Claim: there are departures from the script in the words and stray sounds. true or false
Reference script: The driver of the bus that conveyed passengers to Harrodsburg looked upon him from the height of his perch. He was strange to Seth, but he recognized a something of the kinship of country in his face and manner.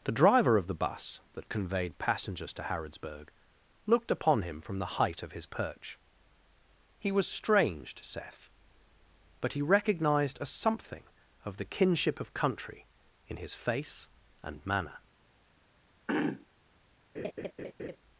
true